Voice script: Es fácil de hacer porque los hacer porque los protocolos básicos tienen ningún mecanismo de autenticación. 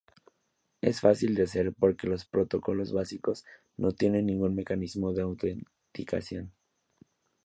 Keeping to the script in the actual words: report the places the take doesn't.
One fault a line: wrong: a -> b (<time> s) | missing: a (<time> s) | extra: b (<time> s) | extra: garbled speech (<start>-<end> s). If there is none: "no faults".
missing: hacer porque los (2.2 s)
extra: no (3.8 s)